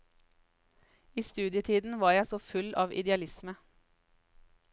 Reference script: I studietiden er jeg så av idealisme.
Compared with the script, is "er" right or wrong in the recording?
wrong